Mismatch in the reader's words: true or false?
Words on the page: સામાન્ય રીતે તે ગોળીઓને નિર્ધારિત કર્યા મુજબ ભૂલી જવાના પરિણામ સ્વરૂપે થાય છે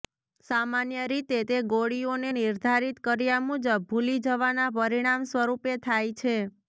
false